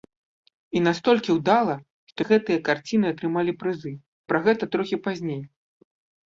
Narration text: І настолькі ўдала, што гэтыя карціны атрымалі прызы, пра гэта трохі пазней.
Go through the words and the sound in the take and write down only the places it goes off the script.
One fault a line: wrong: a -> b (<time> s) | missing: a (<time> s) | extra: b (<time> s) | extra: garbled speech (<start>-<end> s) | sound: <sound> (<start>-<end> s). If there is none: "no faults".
no faults